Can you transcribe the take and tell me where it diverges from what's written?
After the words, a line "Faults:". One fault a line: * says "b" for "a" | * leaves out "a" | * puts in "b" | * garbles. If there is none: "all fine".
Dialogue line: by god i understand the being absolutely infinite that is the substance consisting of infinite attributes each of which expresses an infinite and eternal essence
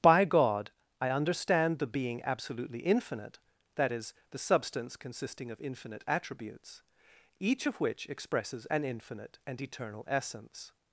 by god i understand the being absolutely infinite that is the substance consisting of infinite attributes each of which expresses an infinite and eternal essence
Faults:
all fine